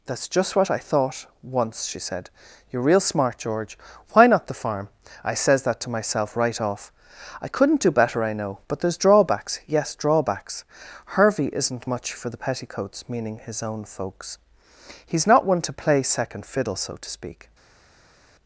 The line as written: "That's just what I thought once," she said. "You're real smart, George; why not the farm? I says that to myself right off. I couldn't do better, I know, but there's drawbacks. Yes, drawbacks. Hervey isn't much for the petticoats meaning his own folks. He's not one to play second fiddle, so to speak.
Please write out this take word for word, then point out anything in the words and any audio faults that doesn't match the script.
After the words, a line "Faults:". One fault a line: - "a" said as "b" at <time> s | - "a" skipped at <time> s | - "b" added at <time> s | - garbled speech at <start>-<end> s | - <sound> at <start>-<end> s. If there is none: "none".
"That's just what I thought once," she said. "You're real smart, George; why not the farm? I says that to myself right off. I couldn't do better, I know, but there's drawbacks. Yes, drawbacks. Hervey isn't much for the petticoats meaning his own folks. He's not one to play second fiddle, so to speak.
Faults:
none